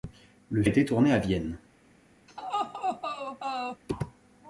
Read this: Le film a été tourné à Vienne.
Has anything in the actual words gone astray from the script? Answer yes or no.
yes